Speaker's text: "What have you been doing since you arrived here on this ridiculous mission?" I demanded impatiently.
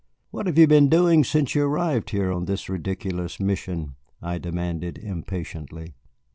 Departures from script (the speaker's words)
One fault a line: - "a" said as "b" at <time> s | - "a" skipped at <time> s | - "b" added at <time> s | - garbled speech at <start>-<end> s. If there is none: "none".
none